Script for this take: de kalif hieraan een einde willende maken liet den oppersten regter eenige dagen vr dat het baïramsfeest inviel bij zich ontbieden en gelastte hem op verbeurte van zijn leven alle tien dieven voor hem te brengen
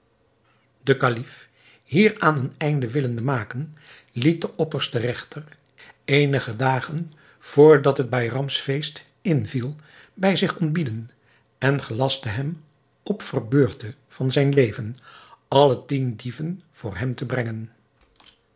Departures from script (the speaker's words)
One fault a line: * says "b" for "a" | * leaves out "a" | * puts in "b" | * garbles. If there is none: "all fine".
all fine